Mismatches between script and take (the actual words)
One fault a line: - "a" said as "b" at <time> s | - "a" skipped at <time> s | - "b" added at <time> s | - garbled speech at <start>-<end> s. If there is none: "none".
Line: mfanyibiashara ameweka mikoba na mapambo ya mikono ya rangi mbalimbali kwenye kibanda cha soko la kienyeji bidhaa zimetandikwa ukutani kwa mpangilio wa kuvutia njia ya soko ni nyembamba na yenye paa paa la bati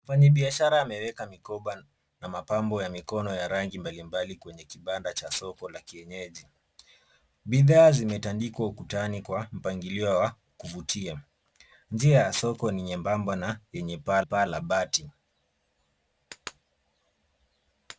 none